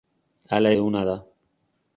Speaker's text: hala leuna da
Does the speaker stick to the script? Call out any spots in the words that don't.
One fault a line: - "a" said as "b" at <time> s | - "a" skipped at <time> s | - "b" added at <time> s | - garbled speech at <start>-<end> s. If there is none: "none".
none